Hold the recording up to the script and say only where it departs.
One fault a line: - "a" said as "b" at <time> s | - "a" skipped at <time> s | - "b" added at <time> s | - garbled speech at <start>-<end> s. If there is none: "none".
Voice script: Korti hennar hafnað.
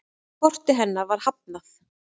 - "var" added at 1.1 s